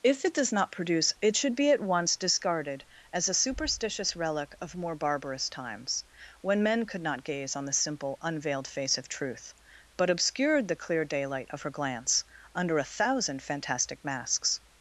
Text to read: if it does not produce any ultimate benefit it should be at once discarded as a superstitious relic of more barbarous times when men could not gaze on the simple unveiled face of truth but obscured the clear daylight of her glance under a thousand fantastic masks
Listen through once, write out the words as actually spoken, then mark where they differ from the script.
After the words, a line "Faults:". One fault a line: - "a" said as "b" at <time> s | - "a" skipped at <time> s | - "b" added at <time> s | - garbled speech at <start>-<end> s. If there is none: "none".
if it does not produce it should be at once discarded as a superstitious relic of more barbarous times when men could not gaze on the simple unveiled face of truth but obscured the clear daylight of her glance under a thousand fantastic masks
Faults:
- "any ultimate benefit" skipped at 1.1 s